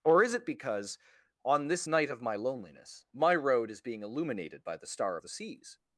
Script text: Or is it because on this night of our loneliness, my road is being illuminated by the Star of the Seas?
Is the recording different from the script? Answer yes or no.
yes